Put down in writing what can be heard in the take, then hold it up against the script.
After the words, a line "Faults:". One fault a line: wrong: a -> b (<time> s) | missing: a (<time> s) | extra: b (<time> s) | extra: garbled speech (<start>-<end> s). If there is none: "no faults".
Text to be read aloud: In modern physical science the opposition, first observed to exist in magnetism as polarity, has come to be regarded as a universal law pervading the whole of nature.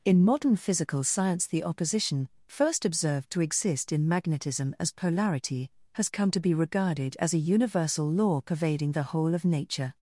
In modern physical science the opposition, first observed to exist in magnetism as polarity, has come to be regarded as a universal law pervading the whole of nature.
Faults:
no faults